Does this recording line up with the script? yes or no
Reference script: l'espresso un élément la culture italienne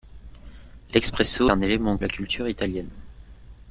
yes